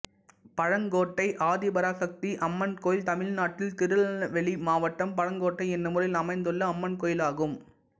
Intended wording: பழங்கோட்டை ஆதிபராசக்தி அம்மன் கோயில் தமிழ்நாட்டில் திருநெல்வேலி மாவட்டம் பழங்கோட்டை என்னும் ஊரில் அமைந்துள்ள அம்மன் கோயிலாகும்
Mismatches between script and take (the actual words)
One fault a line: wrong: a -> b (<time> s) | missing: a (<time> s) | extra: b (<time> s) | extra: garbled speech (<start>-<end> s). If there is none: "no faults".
no faults